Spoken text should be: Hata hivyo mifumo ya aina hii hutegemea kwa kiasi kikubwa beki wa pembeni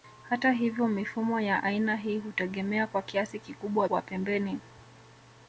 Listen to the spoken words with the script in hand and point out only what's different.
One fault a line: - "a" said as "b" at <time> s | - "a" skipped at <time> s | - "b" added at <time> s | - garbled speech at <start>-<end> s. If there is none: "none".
- "beki" skipped at 3.9 s